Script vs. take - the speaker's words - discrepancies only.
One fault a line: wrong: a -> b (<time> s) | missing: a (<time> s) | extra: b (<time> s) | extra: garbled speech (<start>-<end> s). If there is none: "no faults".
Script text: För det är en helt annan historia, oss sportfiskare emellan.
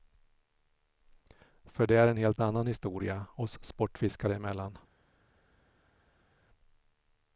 no faults